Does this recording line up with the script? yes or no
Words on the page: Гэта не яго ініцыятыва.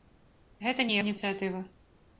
no